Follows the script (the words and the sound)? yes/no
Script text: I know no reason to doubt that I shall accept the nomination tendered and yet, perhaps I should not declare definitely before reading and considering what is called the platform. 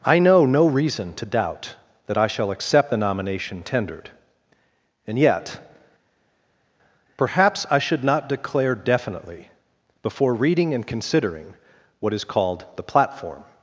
yes